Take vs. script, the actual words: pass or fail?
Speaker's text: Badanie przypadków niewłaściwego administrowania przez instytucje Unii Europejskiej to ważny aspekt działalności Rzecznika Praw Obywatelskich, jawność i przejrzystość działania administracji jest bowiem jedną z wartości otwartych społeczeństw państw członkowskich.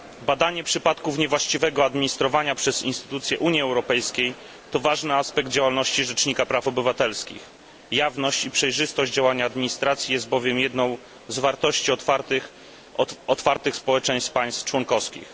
pass